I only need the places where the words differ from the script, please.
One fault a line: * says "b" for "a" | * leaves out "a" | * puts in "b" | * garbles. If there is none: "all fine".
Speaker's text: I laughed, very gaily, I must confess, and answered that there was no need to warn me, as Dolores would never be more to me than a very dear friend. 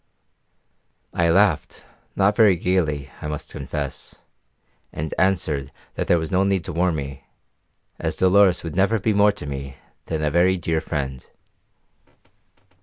* puts in "not"